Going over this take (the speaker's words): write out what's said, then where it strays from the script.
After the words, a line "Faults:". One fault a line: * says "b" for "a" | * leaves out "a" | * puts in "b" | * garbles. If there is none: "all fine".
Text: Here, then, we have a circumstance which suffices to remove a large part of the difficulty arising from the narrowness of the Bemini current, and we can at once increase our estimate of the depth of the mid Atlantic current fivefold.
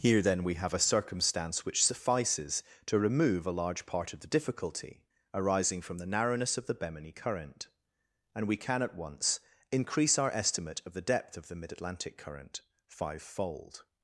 Here, then, we have a circumstance which suffices to remove a large part of the difficulty arising from the narrowness of the Bemini current, and we can at once increase our estimate of the depth of the mid Atlantic current fivefold.
Faults:
all fine